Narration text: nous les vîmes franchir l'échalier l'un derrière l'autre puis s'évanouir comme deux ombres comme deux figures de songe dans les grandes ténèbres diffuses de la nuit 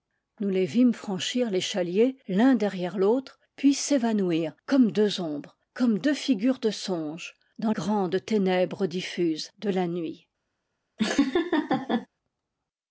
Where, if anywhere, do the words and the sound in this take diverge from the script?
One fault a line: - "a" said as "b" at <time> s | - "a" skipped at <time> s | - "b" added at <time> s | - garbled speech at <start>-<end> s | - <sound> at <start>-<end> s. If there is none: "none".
- "les" skipped at 7.7 s
- laugh at 11.0-12.1 s